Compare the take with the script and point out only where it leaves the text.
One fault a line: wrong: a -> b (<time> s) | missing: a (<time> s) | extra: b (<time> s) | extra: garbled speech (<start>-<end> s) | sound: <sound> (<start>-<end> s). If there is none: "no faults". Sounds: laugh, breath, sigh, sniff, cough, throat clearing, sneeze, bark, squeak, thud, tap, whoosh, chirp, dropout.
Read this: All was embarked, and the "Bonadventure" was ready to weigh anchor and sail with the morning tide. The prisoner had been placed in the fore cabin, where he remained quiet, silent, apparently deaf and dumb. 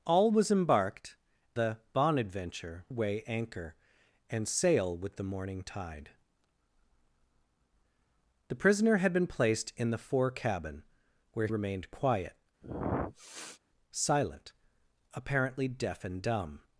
missing: and (1.1 s)
missing: was ready to (2.9 s)
missing: he (11.5 s)
sound: sniff (12.6-13.6 s)